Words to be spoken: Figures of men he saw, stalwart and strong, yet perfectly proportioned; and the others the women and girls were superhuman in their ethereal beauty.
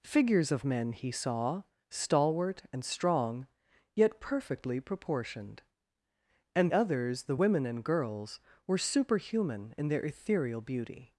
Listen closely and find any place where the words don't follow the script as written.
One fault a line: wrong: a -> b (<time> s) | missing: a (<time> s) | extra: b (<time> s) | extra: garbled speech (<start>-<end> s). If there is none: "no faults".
missing: the (6.7 s)